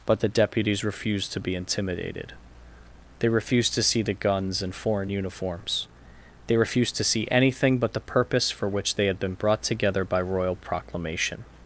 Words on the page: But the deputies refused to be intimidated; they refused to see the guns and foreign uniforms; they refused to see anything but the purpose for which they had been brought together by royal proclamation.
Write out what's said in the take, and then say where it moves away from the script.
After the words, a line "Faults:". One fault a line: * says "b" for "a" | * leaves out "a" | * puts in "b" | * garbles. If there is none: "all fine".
But the deputies refused to be intimidated; they refused to see the guns and foreign uniforms; they refused to see anything but the purpose for which they had been brought together by royal proclamation.
Faults:
all fine